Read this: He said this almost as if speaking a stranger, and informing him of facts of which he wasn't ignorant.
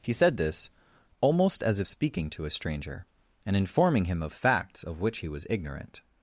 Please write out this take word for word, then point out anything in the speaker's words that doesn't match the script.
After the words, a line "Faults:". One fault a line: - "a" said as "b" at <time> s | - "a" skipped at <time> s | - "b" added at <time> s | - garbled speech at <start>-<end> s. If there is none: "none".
He said this almost as if speaking to a stranger, and informing him of facts of which he was ignorant.
Faults:
- "to" added at 2.3 s
- "wasn't" said as "was" at 5.3 s